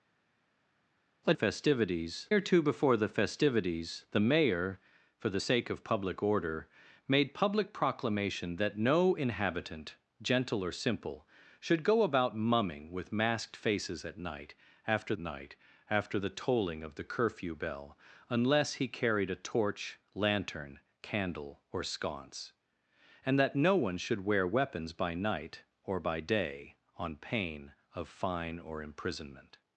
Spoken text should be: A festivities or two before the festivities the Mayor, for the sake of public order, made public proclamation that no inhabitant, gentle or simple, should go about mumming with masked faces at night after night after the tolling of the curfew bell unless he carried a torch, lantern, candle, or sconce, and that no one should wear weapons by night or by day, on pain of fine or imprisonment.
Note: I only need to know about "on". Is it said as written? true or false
true